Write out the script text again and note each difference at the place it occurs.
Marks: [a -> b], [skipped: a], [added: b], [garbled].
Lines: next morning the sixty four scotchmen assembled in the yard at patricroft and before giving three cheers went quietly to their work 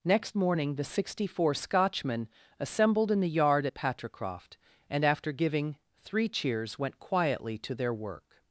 next morning the sixty four scotchmen assembled in the yard at patricroft and [before -> after] giving three cheers went quietly to their work